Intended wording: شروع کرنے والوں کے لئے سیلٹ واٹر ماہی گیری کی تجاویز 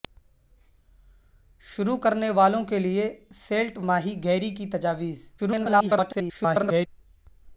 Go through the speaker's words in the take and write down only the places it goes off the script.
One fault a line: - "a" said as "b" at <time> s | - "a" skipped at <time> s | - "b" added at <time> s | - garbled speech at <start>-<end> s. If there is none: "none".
- "واٹر" skipped at 3.8 s
- garbled speech at 5.4-6.9 s